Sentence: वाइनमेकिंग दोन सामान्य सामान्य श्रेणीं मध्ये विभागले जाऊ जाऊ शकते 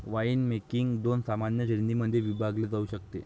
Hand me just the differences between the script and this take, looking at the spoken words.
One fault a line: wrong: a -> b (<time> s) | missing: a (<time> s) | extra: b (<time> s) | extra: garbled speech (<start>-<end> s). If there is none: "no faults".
missing: सामान्य (1.7 s)
missing: जाऊ (2.8 s)